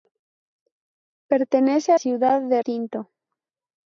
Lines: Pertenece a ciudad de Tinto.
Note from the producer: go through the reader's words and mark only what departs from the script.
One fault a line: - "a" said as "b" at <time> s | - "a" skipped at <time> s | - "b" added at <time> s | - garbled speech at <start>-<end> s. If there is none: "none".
none